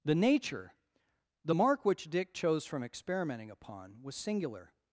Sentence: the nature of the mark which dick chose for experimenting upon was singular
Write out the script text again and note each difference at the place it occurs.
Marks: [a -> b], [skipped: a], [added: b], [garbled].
the nature [skipped: of] the mark which dick chose [for -> from] experimenting upon was singular